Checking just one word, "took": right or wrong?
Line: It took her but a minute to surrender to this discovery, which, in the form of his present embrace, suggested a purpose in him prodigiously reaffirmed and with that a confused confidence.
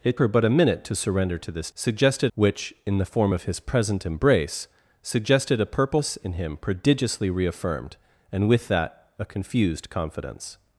wrong